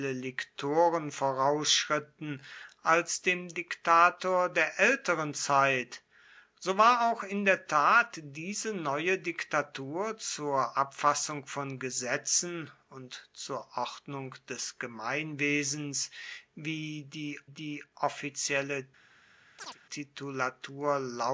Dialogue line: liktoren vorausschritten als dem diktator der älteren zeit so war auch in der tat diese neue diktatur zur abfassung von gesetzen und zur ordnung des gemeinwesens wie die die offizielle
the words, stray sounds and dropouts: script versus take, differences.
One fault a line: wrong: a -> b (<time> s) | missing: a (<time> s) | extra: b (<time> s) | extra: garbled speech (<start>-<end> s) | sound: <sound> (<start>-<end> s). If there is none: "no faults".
sound: chirp (19.6-19.8 s)